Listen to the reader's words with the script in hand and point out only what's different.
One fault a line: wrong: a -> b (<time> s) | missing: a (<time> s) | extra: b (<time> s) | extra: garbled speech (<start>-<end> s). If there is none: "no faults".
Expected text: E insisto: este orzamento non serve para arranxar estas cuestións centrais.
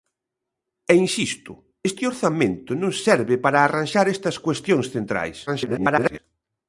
extra: garbled speech (5.5-6.2 s)